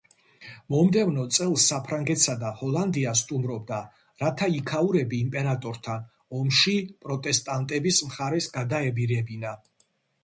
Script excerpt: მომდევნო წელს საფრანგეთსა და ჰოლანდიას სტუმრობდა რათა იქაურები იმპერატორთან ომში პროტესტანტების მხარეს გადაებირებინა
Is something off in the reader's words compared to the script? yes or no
no